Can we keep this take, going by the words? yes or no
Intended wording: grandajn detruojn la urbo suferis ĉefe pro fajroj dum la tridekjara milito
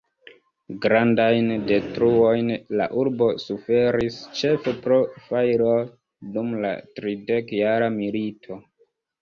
yes